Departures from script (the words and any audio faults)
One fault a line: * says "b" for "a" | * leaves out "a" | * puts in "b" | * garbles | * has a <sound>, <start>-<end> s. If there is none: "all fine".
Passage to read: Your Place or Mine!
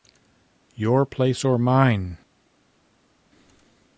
all fine